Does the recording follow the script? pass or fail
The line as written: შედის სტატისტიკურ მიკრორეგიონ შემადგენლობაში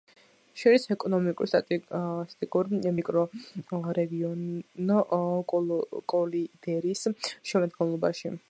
fail